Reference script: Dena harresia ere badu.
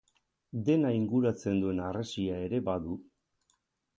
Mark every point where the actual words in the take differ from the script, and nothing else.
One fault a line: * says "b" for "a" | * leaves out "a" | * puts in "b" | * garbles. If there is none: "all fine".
* puts in "inguratzen duen"